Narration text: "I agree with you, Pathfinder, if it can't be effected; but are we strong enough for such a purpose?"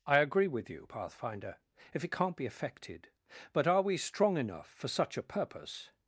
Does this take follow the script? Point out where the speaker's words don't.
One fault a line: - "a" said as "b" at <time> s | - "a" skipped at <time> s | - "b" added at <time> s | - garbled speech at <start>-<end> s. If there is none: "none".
none